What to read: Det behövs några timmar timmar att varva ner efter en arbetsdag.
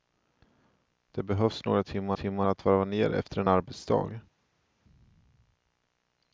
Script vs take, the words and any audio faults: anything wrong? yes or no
no